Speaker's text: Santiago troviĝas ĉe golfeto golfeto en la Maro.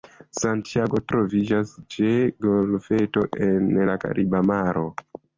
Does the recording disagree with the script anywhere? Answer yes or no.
yes